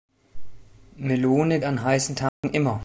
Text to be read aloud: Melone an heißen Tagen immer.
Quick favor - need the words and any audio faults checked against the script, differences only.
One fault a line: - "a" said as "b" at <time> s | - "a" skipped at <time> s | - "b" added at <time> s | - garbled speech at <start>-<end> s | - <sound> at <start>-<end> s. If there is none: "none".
- dropout at 2.3-2.4 s